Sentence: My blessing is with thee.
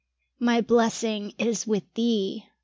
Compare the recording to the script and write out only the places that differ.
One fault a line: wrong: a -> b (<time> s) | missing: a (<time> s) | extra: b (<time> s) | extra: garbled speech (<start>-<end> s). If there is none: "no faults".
no faults